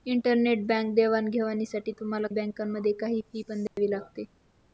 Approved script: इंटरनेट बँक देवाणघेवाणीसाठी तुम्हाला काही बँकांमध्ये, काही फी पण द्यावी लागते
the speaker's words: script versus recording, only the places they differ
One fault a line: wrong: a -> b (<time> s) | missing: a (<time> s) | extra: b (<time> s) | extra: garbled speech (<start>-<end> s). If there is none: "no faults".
missing: काही (2.3 s)